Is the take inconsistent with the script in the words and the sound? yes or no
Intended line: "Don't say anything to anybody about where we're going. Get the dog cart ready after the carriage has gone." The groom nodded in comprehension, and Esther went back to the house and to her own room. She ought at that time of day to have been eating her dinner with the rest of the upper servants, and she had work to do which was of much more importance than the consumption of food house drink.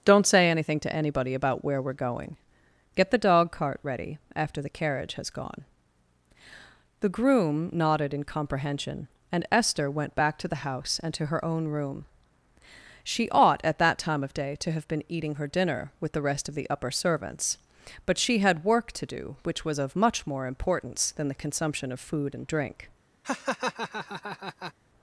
yes